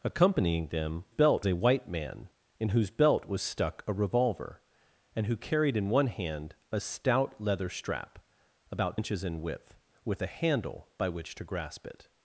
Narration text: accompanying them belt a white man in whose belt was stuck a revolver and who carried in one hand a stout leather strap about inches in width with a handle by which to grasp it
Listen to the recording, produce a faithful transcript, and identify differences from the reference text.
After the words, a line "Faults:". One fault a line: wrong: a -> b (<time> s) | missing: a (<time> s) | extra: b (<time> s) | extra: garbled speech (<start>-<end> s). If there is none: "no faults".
accompanying them belt a white man in whose belt was stuck a revolver and who carried in one hand a stout leather strap about inches in width with a handle by which to grasp it
Faults:
no faults